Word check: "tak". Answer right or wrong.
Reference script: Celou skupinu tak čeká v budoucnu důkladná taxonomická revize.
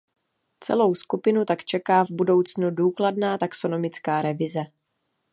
right